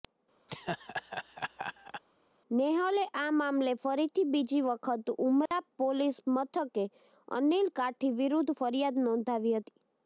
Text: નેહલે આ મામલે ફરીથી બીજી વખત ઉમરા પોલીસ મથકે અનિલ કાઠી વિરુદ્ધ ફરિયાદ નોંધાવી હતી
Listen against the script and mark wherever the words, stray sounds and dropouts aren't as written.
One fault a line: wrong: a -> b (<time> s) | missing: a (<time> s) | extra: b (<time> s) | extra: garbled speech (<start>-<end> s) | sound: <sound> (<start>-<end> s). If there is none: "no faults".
sound: laugh (0.5-2.0 s)
sound: dropout (5.5-5.5 s)